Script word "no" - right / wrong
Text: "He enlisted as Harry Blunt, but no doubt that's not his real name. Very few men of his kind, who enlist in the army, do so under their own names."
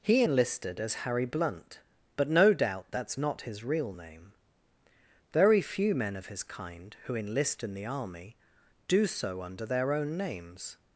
right